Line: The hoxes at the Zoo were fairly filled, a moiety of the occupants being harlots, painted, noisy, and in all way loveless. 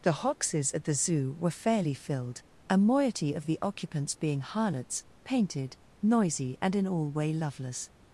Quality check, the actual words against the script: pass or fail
pass